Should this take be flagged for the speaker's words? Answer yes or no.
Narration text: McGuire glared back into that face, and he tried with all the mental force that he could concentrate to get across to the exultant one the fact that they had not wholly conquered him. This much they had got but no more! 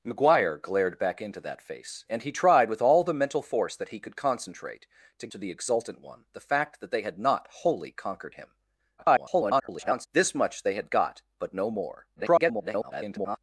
yes